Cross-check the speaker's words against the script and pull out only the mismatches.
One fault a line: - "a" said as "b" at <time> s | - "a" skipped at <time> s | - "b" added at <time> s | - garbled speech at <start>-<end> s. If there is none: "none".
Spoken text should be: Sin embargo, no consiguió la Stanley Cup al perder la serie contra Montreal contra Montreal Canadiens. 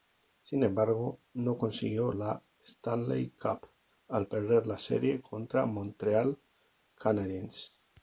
- "contra Montreal" skipped at 6.4 s